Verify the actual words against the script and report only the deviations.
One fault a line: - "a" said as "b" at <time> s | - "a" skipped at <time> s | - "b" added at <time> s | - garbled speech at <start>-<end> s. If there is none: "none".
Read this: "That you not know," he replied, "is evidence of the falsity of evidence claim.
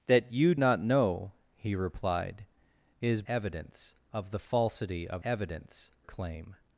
none